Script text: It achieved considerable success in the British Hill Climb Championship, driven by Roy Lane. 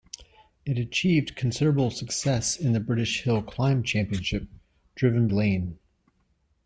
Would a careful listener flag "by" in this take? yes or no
yes